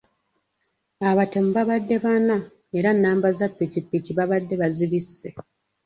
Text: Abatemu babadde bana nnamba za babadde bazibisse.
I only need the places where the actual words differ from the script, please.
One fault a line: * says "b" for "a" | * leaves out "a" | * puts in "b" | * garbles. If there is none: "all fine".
* puts in "era"
* puts in "ppikipiki"